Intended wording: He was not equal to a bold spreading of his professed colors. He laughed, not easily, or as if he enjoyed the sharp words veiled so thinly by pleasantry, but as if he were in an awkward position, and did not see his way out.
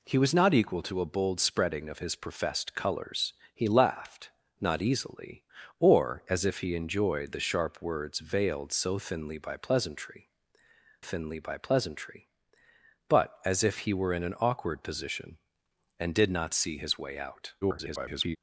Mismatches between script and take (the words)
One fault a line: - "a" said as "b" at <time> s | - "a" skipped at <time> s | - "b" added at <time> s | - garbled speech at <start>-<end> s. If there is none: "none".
- "thinly by pleasantry" added at 11.0 s
- garbled speech at 17.6-18.4 s